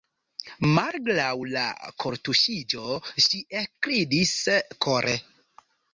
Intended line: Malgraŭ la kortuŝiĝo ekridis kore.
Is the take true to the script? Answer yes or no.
no